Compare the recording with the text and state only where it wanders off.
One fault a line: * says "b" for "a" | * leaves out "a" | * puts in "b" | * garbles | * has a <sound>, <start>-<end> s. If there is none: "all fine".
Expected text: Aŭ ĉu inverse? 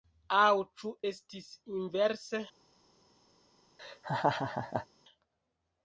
* puts in "estis"
* has a laugh, 3.8-4.9 s